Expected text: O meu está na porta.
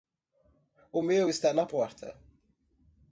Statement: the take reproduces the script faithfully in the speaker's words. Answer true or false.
true